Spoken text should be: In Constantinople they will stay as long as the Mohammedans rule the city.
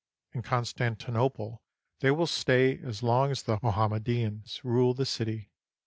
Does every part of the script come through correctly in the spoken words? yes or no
yes